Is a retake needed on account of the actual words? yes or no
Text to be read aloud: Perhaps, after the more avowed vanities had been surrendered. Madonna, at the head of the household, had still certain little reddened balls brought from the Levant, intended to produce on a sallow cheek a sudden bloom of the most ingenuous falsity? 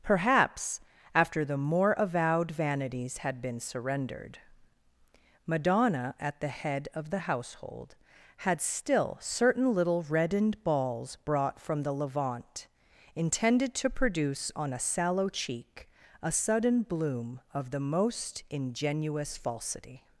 no